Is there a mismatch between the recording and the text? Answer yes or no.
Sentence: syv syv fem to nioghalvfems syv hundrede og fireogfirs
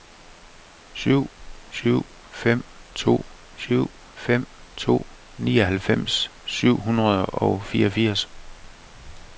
yes